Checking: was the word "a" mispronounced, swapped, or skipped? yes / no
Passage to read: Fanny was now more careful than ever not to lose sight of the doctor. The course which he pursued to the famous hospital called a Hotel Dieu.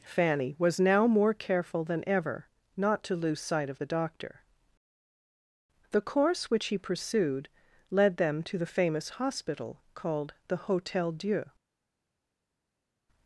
yes